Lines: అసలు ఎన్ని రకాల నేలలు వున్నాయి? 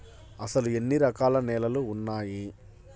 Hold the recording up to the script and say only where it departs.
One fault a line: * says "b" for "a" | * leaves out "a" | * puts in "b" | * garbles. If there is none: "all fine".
all fine